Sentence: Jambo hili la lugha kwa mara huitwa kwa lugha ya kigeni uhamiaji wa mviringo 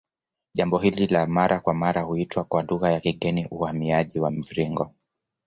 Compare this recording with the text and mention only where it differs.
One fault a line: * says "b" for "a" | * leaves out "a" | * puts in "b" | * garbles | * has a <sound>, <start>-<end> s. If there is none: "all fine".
* says "mara" for "lugha"